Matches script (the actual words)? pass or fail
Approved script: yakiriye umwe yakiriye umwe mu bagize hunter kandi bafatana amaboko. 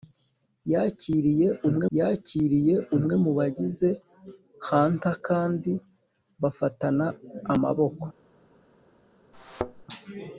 pass